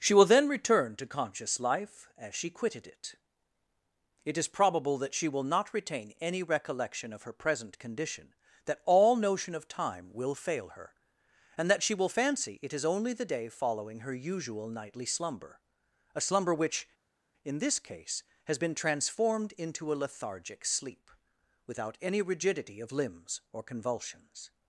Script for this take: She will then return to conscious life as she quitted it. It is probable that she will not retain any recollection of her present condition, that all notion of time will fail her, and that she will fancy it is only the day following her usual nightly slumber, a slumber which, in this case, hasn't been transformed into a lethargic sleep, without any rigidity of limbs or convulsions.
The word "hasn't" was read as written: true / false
false